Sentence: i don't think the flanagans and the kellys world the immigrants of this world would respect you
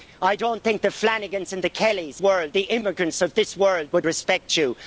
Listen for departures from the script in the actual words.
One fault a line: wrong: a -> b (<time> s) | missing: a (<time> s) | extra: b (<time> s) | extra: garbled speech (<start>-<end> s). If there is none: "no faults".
no faults